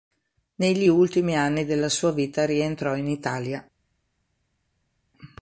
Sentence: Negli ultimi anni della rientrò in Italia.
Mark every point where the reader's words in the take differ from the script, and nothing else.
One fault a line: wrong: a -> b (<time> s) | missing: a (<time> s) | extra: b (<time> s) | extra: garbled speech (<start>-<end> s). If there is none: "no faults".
extra: sua vita (1.9 s)